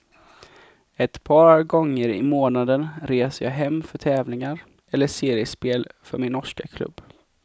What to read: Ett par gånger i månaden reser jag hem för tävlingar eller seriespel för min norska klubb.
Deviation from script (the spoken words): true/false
false